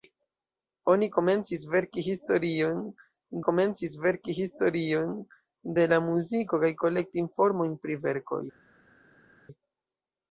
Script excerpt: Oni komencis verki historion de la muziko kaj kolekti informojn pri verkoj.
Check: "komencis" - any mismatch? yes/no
no